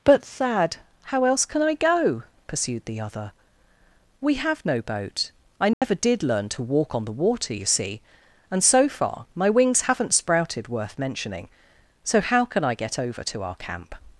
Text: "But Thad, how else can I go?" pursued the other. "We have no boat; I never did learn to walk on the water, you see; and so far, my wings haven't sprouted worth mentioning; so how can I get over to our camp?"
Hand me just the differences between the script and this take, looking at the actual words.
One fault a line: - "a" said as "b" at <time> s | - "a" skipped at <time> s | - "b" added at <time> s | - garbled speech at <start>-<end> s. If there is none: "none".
none